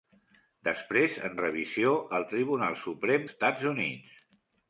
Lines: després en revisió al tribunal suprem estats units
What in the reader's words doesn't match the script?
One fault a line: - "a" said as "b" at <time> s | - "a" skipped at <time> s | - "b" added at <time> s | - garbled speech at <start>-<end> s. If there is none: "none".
none